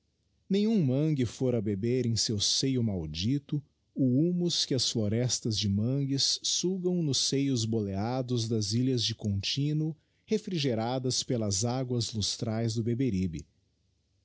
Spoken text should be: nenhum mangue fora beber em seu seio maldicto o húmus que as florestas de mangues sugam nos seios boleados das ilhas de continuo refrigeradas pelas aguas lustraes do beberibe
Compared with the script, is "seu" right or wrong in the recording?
right